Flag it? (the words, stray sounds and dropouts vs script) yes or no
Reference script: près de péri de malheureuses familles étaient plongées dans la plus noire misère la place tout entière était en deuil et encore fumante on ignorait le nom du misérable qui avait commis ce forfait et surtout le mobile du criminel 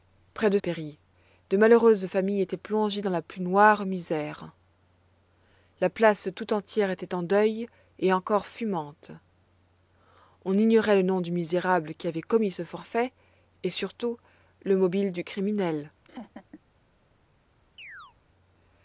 yes